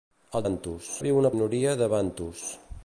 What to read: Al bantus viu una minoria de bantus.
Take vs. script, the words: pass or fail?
pass